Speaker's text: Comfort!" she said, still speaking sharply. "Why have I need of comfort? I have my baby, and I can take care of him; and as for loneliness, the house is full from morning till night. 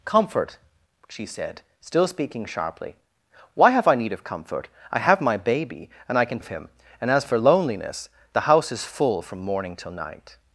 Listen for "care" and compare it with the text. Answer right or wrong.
wrong